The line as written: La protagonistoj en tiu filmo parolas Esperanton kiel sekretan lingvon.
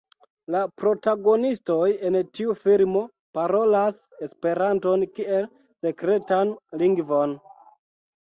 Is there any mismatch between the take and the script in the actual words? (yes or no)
no